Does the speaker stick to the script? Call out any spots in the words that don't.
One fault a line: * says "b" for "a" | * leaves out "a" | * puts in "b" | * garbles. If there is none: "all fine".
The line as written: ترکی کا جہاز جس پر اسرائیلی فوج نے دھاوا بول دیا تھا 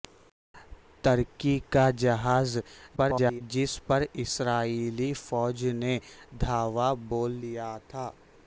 * garbles